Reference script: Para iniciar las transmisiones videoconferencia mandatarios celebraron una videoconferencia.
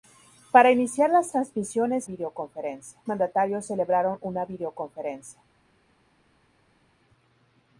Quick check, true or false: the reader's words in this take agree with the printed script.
true